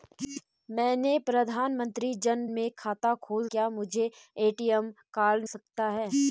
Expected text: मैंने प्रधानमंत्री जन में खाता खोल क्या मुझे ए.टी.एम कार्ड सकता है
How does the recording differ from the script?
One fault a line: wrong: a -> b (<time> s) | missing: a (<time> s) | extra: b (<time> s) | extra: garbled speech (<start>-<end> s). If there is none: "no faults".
no faults